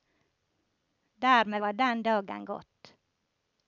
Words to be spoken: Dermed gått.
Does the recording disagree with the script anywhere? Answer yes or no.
yes